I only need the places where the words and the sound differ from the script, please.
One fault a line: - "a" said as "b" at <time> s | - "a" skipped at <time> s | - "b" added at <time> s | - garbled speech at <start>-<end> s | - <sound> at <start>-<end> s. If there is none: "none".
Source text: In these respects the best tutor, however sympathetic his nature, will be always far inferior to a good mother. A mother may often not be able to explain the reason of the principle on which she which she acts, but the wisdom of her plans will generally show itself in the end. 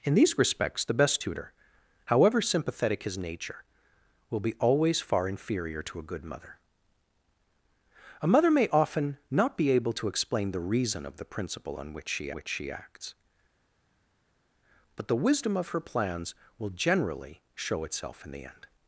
none